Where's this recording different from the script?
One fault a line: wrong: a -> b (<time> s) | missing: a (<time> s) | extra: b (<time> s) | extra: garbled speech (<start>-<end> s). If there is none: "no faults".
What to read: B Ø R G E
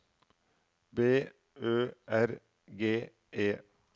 no faults